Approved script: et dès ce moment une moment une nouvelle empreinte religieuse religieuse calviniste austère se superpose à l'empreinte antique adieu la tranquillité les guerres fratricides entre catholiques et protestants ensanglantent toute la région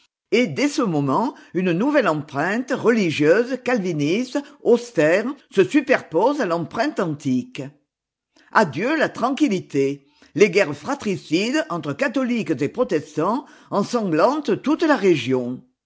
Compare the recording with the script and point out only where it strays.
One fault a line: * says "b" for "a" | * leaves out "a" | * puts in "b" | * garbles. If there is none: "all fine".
* leaves out "moment une"
* leaves out "religieuse"